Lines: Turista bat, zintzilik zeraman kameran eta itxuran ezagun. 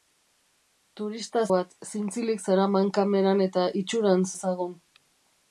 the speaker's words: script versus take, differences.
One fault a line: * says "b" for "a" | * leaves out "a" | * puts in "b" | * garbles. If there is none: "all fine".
all fine